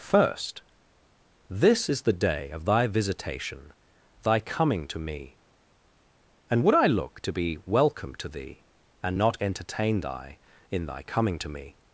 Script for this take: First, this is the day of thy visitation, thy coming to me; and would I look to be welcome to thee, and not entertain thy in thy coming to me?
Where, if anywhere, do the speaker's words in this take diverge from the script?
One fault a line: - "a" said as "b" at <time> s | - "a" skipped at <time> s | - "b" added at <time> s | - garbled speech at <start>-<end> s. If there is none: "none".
none